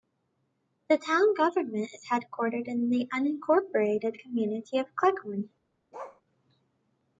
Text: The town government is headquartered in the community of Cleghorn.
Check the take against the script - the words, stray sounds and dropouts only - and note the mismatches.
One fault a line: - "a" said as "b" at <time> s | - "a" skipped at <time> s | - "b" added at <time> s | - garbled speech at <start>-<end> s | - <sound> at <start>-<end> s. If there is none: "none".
- "unincorporated" added at 3.1 s
- bark at 5.9-6.2 s